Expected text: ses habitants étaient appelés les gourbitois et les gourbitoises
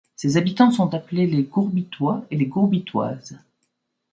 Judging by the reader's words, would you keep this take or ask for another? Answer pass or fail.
fail